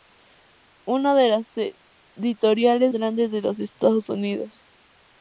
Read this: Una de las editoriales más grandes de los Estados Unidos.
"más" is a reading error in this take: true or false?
true